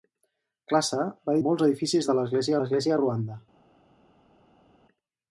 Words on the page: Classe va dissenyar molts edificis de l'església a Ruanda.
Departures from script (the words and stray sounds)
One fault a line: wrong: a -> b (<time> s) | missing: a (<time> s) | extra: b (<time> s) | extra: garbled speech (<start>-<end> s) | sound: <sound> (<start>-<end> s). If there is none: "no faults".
missing: dissenyar (1.4 s)
extra: l'església (2.6 s)